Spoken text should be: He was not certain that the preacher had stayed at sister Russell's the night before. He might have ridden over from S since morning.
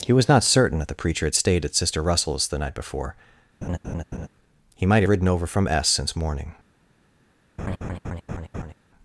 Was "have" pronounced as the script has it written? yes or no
no